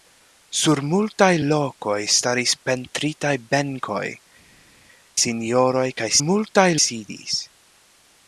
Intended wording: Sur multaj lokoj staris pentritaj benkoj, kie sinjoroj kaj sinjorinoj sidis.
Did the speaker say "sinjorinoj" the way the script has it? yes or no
no